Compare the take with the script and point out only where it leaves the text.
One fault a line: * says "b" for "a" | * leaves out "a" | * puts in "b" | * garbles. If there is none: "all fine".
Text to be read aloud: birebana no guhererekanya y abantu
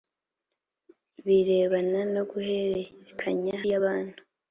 all fine